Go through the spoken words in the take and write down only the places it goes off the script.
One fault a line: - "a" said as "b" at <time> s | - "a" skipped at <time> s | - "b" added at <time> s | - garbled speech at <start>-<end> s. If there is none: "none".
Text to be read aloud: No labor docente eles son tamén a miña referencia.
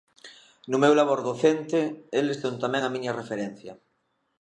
- "meu" added at 0.8 s